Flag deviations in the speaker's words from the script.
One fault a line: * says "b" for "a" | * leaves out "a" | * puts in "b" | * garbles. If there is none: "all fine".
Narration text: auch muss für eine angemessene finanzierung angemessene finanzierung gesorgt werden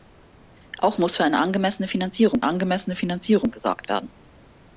all fine